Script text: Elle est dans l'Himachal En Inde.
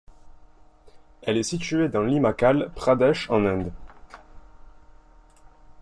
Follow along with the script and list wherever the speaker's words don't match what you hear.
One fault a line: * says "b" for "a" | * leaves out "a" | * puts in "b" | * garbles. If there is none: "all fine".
* puts in "située"
* puts in "Pradesh"